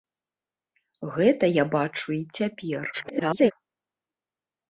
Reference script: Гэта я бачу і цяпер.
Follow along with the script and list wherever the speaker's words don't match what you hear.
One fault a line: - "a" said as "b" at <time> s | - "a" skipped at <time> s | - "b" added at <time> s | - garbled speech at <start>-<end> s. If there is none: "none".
- garbled speech at 2.9-3.5 s